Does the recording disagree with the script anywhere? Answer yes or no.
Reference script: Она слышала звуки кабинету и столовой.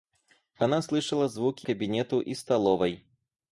no